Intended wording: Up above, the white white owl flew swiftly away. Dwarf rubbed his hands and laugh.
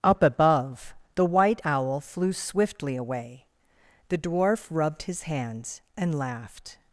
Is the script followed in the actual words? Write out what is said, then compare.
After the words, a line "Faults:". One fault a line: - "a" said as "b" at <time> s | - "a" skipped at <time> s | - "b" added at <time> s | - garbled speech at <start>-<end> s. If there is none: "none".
Up above, the white owl flew swiftly away. The dwarf rubbed his hands and laughed.
Faults:
- "white" skipped at 1.6 s
- "The" added at 4.1 s
- "laugh" said as "laughed" at 6.2 s